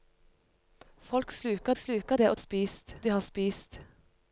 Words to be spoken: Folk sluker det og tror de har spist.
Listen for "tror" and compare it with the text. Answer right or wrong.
wrong